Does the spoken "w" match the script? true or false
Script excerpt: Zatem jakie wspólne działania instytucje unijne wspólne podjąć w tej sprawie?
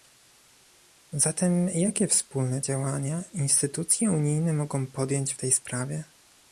true